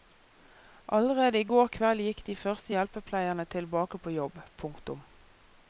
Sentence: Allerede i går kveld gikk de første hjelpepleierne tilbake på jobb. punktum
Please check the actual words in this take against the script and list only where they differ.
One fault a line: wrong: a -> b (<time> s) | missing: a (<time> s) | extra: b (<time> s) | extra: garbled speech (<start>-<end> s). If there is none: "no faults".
no faults